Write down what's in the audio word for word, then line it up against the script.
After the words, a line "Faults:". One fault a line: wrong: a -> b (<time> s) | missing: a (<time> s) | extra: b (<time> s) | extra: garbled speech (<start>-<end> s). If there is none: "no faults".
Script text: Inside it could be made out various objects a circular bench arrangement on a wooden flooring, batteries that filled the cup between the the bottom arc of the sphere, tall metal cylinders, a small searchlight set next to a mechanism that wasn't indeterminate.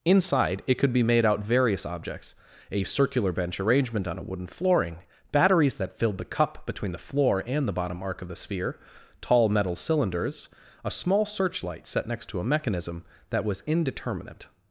Inside it could be made out various objects a circular bench arrangement on a wooden flooring, batteries that filled the cup between the floor and the bottom arc of the sphere, tall metal cylinders, a small searchlight set next to a mechanism that was indeterminate.
Faults:
extra: floor and (7.0 s)
wrong: wasn't -> was (13.4 s)